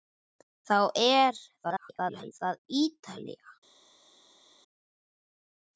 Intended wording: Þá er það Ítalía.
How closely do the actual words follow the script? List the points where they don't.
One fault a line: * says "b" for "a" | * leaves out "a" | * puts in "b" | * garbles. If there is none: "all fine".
* garbles